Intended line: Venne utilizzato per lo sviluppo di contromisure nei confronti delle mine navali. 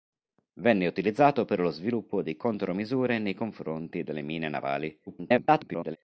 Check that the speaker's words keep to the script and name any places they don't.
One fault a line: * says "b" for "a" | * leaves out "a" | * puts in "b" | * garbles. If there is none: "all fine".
* garbles